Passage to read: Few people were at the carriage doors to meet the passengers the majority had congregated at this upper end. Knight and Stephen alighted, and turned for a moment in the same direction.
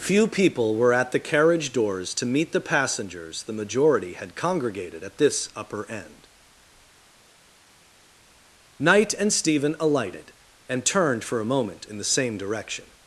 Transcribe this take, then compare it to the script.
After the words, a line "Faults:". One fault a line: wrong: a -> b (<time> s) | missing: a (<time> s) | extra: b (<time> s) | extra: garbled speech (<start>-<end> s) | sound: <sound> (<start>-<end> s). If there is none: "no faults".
Few people were at the carriage doors to meet the passengers the majority had congregated at this upper end. Knight and Stephen alighted, and turned for a moment in the same direction.
Faults:
no faults